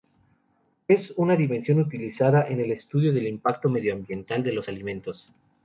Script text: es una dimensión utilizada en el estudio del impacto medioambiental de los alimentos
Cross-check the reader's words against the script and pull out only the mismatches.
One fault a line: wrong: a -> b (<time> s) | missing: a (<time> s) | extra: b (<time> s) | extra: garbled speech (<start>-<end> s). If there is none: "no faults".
no faults